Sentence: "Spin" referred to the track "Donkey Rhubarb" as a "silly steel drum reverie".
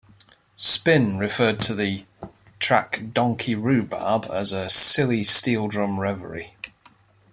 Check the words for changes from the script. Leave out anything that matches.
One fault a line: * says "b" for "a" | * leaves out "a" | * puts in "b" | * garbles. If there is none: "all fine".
all fine